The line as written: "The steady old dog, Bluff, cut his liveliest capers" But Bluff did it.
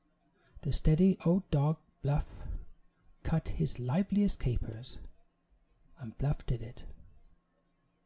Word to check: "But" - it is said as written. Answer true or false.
false